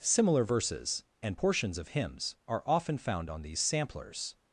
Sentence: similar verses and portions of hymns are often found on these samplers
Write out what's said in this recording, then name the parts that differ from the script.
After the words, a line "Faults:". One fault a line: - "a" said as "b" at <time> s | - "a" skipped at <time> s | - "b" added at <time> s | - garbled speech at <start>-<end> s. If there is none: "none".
similar verses and portions of hymns are often found on these samplers
Faults:
none